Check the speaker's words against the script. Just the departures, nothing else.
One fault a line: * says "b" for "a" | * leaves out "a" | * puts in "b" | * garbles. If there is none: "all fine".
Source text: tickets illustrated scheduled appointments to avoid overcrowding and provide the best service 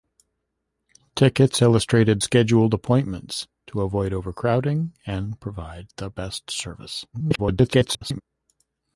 * garbles